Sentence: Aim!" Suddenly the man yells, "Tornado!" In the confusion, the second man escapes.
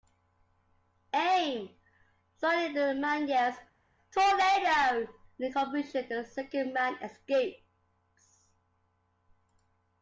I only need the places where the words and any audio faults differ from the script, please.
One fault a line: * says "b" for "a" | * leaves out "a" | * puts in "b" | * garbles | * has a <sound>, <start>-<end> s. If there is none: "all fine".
all fine